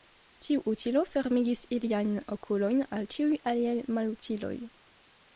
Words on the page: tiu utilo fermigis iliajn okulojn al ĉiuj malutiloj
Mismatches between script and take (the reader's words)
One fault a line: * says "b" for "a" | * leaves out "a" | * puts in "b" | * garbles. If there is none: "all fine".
* puts in "aliaj"